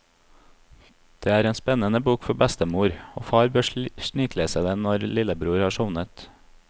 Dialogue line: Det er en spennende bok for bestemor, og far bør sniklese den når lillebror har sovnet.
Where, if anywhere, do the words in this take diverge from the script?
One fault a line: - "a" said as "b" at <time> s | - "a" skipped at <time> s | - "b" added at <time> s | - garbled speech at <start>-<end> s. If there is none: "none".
none